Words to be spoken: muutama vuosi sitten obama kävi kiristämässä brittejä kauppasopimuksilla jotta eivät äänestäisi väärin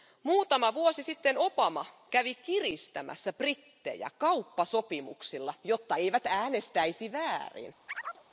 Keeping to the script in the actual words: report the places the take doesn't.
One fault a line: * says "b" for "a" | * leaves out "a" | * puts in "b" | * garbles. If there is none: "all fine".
all fine